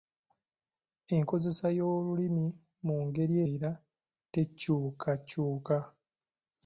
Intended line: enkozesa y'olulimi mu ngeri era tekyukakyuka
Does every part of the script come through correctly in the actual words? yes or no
yes